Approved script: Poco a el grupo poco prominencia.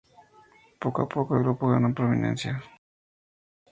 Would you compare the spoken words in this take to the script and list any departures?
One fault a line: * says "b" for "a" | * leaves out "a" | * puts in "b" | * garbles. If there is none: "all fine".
* puts in "poco"
* says "ganó" for "poco"